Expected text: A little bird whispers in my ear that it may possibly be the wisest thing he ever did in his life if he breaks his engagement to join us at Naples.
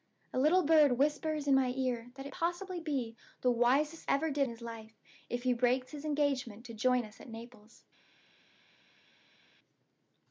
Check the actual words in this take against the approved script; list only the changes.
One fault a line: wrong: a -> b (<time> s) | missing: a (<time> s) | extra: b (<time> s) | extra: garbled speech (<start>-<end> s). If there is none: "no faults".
missing: may (2.3 s)
missing: thing he (4.1 s)
missing: in (4.5 s)